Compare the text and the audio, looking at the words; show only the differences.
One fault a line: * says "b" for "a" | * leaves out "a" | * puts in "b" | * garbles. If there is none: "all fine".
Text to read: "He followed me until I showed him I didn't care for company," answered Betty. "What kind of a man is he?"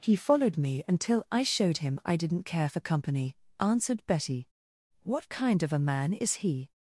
all fine